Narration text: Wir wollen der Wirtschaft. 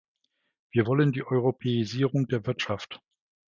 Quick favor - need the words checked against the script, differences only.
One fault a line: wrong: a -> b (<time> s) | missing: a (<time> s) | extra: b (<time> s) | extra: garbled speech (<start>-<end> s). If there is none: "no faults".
extra: die Europäisierung (1.1 s)